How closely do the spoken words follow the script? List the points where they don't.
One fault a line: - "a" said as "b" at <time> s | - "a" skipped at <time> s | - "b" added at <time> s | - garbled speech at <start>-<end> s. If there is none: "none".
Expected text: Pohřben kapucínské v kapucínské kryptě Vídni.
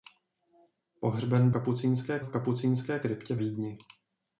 none